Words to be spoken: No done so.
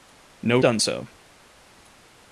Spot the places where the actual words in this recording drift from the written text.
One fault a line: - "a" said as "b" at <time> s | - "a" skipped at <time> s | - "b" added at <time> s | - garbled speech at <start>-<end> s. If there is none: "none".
none